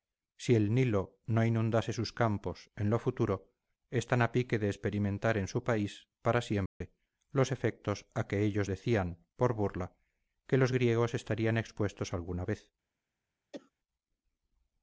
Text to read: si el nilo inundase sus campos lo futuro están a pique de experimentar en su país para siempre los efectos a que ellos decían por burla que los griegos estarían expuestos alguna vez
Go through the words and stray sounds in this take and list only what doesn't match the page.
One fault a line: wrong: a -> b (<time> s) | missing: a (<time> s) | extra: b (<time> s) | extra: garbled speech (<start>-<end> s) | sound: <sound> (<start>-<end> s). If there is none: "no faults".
extra: no (1.3 s)
extra: en (2.8 s)
sound: dropout (6.7-6.8 s)
sound: cough (13.5-13.7 s)